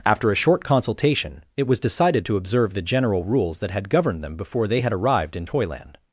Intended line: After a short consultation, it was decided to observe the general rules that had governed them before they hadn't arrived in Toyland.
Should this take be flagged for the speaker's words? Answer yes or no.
yes